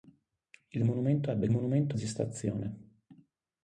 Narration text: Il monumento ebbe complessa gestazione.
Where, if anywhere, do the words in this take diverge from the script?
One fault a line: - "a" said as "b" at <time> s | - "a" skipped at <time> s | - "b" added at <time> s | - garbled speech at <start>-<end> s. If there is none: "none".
- "complessa" said as "monumento" at 1.5 s